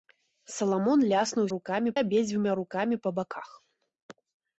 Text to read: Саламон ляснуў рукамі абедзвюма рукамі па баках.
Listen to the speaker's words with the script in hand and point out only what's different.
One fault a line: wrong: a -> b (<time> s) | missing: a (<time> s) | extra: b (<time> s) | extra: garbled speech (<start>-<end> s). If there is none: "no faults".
no faults